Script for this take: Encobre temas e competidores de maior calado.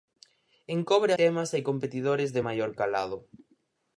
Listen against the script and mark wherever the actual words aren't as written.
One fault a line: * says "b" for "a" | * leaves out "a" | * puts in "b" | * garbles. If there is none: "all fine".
all fine